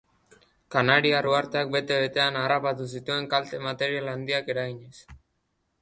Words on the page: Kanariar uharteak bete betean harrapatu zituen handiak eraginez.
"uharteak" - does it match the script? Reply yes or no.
yes